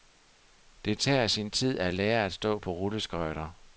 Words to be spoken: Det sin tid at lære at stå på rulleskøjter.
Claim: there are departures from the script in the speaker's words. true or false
true